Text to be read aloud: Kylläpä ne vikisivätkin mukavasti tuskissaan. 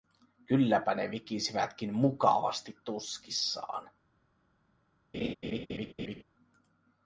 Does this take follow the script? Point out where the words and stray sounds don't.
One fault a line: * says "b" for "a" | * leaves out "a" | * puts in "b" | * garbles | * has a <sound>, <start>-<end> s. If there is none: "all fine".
* has a laugh, 5.1-6.2 s